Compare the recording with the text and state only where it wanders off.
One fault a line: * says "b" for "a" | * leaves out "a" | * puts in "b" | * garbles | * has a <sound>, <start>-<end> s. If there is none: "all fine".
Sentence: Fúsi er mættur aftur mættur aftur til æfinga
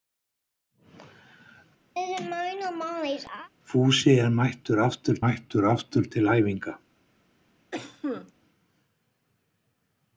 * has a laugh, 1.9-3.5 s
* has a cough, 7.7-8.3 s